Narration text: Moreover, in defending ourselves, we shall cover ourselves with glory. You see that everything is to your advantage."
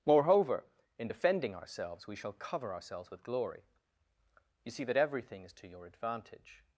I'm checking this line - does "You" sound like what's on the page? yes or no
yes